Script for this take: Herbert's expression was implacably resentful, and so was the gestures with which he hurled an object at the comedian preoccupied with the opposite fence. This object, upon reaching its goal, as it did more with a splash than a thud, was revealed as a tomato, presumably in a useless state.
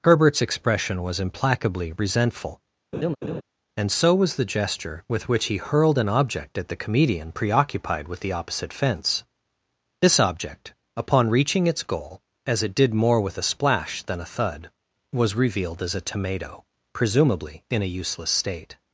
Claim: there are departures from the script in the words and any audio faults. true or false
true